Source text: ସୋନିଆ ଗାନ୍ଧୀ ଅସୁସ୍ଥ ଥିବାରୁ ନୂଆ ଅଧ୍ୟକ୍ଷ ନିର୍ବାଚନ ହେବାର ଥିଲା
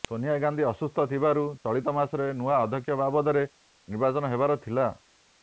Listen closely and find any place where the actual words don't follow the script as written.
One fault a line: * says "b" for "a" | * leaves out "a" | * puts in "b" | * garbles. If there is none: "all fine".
* puts in "ଚଳିତ ମାସରେ"
* puts in "ବାବଦରେ"